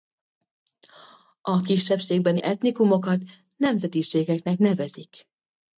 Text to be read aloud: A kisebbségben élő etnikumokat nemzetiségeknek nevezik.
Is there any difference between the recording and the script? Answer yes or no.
yes